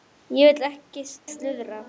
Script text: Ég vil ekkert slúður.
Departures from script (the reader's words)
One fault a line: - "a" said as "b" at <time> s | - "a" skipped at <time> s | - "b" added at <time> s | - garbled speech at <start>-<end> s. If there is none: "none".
- "ekkert" skipped at 0.7 s